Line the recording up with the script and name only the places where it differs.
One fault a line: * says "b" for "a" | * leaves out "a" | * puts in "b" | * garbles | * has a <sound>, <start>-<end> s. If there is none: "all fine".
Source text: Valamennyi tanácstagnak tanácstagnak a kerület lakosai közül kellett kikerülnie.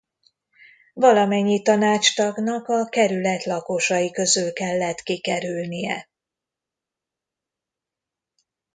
* leaves out "tanácstagnak"